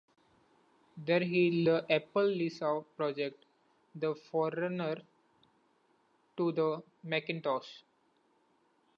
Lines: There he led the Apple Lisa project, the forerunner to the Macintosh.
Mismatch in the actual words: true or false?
true